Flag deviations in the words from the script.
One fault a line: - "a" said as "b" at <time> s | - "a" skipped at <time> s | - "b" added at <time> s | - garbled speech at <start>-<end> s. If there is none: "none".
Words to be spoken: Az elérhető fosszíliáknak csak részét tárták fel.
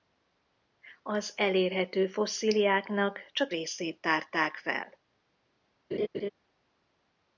none